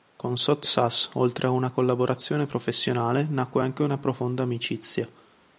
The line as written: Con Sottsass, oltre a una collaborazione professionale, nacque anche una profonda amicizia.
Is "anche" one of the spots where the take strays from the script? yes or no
no